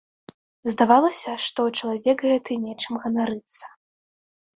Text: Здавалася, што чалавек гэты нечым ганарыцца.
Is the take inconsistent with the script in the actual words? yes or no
no